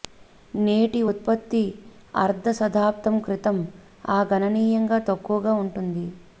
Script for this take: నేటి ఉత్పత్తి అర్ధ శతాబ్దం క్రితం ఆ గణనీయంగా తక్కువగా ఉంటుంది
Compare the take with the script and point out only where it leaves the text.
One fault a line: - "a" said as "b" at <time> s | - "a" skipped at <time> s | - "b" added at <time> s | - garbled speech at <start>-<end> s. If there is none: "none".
none